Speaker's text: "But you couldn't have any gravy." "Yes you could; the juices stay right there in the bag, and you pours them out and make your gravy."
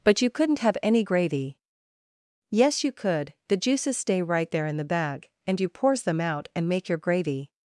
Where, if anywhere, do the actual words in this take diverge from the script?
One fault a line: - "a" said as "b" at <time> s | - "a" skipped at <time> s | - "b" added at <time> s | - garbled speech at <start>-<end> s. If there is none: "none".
none